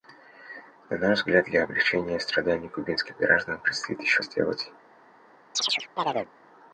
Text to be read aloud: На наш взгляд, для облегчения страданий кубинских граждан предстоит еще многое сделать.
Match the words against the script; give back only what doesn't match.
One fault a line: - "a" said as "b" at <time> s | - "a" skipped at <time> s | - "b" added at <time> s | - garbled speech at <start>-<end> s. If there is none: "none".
- "многое" skipped at 4.2 s